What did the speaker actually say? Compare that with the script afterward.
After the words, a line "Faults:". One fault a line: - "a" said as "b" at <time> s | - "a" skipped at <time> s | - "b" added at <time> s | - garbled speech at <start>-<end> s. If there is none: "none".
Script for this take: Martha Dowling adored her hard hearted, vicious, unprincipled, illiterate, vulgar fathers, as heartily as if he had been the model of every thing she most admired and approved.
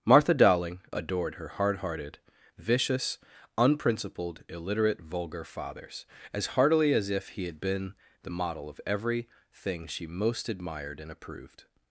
Martha Dowling adored her hard hearted, vicious, unprincipled, illiterate, vulgar fathers, as heartily as if he had been the model of every thing she most admired and approved.
Faults:
none